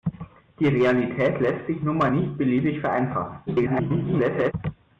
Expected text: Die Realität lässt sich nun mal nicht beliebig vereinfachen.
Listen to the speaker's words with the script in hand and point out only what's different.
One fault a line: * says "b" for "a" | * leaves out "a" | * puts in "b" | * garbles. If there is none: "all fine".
* garbles